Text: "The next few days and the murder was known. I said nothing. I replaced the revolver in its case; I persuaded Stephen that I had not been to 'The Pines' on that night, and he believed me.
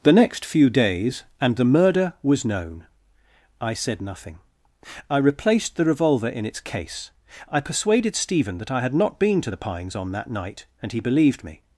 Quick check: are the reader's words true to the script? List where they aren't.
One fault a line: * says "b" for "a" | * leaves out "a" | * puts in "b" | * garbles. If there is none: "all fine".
all fine